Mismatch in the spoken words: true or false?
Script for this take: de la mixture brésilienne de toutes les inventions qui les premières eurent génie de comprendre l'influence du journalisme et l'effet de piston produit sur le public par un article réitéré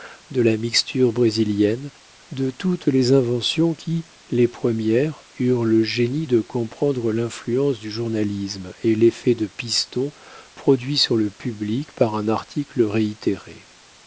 true